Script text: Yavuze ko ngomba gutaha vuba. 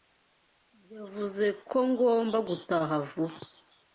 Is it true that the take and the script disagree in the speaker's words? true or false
false